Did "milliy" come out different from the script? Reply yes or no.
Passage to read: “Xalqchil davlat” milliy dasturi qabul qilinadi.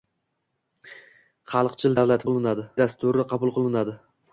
yes